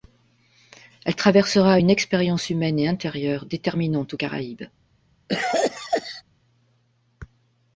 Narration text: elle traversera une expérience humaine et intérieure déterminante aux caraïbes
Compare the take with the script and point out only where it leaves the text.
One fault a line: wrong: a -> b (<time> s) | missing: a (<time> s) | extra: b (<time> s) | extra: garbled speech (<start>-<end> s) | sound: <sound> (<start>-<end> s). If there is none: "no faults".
sound: cough (5.3-6.2 s)